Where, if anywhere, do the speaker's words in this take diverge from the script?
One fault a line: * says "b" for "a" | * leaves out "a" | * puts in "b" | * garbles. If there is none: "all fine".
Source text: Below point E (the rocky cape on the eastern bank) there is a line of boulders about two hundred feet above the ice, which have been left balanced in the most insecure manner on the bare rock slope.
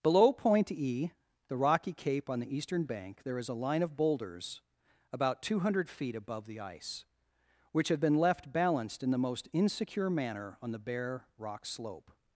all fine